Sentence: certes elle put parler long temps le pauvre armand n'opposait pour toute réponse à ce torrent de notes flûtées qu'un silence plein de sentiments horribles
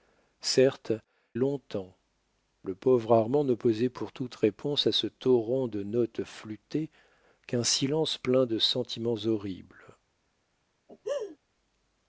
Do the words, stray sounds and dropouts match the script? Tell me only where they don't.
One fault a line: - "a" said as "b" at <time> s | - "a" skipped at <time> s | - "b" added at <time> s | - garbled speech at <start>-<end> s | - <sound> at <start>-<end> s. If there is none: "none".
- "elle put parler" skipped at 0.9 s
- laugh at 10.9-11.4 s